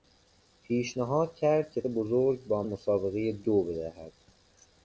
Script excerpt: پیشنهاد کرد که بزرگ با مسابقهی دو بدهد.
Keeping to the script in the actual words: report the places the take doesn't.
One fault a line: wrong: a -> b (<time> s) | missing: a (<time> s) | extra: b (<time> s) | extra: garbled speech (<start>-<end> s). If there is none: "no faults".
no faults